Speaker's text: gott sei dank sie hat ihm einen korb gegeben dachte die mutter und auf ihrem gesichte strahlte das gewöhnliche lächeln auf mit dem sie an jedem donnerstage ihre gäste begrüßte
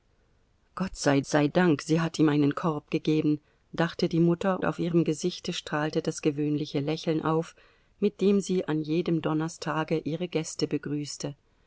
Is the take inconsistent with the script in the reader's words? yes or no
yes